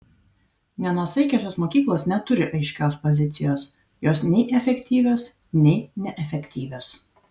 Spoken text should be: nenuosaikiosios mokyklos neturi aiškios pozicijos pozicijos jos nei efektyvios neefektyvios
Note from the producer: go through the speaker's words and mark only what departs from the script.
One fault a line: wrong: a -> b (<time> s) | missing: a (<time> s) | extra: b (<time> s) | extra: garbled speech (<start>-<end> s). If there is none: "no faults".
missing: pozicijos (3.7 s)
extra: nei (5.7 s)